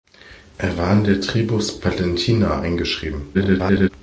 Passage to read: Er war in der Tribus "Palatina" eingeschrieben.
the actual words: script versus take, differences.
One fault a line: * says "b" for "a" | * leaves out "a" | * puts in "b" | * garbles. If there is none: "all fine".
* garbles